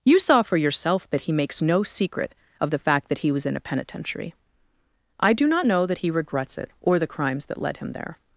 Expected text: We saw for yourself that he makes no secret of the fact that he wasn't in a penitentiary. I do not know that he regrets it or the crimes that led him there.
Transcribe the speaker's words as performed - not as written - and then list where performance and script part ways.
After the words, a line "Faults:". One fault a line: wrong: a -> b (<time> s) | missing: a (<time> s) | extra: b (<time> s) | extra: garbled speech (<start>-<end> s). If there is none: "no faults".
You saw for yourself that he makes no secret of the fact that he was in a penitentiary. I do not know that he regrets it or the crimes that led him there.
Faults:
wrong: We -> You (0.0 s)
wrong: wasn't -> was (3.3 s)